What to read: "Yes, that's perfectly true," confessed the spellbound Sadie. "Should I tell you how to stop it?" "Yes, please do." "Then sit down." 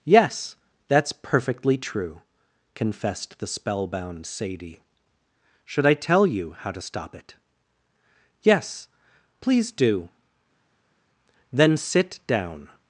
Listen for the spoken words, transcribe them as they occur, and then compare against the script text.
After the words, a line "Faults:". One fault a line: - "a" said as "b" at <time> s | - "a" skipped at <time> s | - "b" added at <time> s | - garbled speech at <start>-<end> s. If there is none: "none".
"Yes, that's perfectly true," confessed the spellbound Sadie. "Should I tell you how to stop it?" "Yes, please do." "Then sit down."
Faults:
none